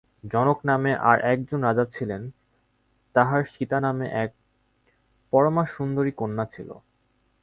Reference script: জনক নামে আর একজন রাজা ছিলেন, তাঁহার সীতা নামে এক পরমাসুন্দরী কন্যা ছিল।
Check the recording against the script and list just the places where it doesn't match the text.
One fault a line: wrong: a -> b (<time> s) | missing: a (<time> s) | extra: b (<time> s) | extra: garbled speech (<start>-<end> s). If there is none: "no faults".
no faults